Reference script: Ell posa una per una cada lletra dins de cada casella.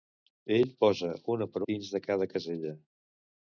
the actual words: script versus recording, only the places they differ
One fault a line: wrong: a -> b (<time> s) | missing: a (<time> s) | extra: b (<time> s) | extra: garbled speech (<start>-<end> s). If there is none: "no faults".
missing: una cada lletra (1.6 s)